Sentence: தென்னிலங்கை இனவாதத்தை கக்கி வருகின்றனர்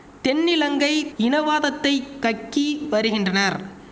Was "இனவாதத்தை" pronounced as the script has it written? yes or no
yes